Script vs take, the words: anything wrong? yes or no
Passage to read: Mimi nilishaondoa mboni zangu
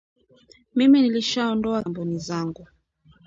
no